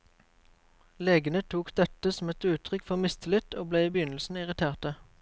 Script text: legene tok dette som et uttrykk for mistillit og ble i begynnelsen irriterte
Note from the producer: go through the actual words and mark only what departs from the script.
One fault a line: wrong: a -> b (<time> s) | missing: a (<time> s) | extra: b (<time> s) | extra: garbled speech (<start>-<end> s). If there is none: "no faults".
no faults